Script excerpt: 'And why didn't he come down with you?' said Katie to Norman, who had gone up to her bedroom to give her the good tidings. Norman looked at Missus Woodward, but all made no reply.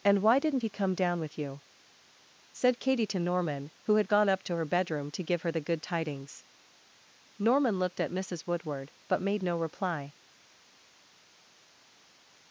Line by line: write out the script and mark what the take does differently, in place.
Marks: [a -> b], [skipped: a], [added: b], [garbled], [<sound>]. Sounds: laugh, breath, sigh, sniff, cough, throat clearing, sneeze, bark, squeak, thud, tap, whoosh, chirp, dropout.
'And why didn't he come down with you?' said Katie to Norman, who had gone up to her bedroom to give her the good tidings. Norman looked at Missus Woodward, but [skipped: all] made no reply.